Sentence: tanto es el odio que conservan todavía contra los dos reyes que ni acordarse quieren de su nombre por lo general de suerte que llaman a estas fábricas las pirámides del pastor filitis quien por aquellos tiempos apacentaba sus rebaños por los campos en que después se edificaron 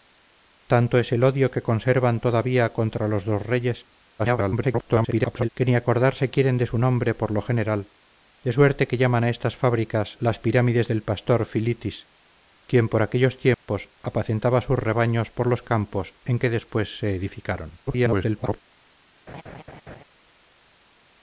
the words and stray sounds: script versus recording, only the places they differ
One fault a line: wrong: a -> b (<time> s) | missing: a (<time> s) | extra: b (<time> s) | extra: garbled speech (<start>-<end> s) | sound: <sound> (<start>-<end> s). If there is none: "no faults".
extra: garbled speech (4.2-5.5 s)
sound: dropout (13.5-13.7 s)
extra: garbled speech (17.9-18.6 s)
sound: laugh (19.3-20.0 s)